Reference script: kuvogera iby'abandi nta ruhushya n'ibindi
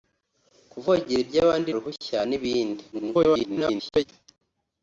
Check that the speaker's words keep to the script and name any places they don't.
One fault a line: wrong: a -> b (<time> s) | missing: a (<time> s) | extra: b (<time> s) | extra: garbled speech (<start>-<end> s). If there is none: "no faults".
missing: nta (1.7 s)
extra: garbled speech (2.9-4.1 s)